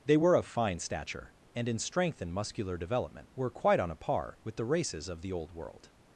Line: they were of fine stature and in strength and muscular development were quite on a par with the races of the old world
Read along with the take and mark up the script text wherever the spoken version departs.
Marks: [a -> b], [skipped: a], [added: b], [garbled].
they were of fine stature and in strength and muscular development were quite on a par with the races of the old world